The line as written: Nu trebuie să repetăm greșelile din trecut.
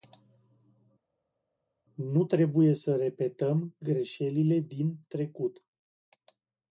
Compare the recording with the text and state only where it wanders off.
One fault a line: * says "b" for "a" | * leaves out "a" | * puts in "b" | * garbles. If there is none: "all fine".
all fine